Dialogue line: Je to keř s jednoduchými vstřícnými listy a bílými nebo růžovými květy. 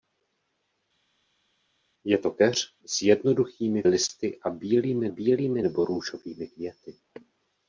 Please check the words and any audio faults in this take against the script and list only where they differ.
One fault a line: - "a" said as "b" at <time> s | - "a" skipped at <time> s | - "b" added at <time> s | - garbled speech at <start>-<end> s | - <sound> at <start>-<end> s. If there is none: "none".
- "vstřícnými" skipped at 3.8 s
- "bílými" added at 5.1 s